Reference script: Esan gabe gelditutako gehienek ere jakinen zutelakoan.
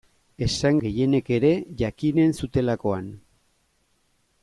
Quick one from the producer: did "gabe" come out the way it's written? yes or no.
no